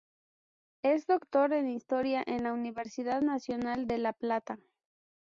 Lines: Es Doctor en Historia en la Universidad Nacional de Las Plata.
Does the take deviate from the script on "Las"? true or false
true